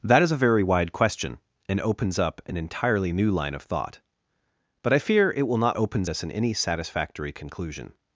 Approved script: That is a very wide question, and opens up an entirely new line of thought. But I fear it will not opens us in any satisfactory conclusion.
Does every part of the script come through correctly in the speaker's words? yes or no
yes